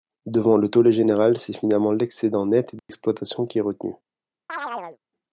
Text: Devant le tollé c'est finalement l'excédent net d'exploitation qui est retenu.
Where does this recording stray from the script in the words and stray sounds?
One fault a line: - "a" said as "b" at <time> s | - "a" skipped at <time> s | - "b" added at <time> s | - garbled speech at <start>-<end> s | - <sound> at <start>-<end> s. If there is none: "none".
- "général" added at 0.9 s
- dropout at 2.8-2.9 s
- chirp at 4.5-5.0 s